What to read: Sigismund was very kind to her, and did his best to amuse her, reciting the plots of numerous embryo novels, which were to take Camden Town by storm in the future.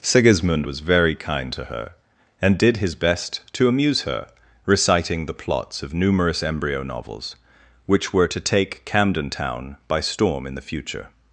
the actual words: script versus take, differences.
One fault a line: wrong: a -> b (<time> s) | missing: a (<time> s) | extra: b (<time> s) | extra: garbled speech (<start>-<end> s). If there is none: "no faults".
no faults